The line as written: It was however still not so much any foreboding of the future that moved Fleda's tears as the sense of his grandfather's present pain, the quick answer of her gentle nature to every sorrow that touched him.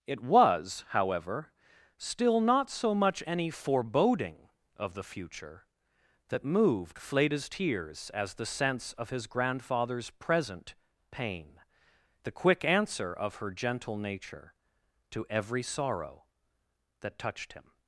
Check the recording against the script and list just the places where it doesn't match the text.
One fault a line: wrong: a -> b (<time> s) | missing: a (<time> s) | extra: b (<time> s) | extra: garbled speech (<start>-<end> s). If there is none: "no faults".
no faults